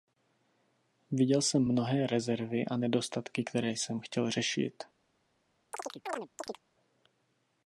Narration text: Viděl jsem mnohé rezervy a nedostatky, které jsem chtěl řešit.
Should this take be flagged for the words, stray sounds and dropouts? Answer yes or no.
yes